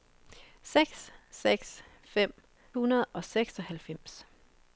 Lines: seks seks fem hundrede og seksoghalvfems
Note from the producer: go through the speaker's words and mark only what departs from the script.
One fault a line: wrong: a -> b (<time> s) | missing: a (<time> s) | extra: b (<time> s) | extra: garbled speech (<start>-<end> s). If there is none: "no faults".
no faults